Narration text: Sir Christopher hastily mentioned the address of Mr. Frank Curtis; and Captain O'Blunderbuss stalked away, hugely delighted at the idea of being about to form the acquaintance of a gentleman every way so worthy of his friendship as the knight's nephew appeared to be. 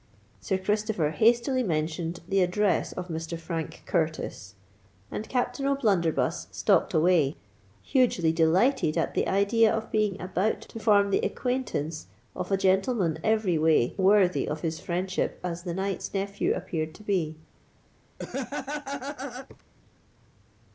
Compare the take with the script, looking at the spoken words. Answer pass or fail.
fail